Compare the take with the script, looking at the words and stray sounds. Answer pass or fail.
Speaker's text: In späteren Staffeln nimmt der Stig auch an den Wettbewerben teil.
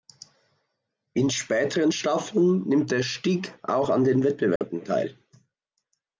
fail